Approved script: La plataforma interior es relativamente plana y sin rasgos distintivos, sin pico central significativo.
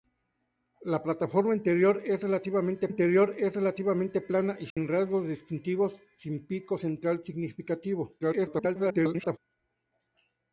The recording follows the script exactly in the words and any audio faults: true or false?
false